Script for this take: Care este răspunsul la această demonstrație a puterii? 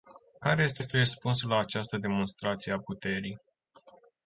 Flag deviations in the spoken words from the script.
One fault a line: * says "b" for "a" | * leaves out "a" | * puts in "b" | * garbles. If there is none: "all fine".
* puts in "este"